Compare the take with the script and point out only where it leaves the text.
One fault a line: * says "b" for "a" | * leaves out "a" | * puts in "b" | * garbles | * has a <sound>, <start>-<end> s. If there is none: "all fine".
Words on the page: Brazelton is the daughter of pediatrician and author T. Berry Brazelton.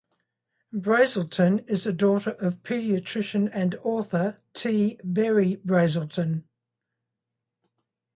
all fine